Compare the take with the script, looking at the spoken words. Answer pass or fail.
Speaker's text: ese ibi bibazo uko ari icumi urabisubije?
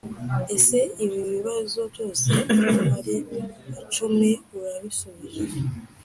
fail